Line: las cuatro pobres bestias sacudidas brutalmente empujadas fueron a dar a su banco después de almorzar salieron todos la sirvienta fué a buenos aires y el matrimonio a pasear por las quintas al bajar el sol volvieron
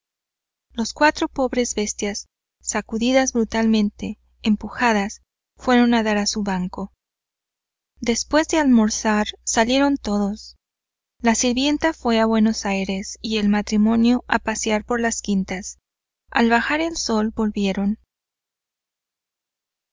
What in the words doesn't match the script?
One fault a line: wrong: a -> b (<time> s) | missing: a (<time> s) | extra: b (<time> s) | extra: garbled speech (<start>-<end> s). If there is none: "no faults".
no faults